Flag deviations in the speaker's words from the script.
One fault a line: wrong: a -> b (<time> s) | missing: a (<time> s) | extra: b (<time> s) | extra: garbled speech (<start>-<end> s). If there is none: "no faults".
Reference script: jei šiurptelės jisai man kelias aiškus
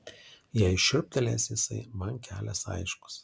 no faults